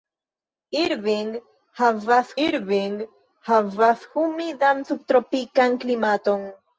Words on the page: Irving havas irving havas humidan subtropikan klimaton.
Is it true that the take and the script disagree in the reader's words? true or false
false